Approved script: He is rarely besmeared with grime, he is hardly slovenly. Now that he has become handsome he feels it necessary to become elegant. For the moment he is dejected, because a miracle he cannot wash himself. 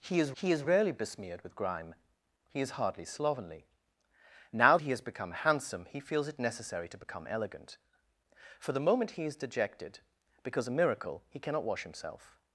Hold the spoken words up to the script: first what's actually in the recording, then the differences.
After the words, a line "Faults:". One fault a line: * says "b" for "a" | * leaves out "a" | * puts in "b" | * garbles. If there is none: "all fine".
He is he is rarely besmeared with grime, he is hardly slovenly. Now he has become handsome he feels it necessary to become elegant. For the moment he is dejected, because a miracle he cannot wash himself.
Faults:
* puts in "he is"
* leaves out "that"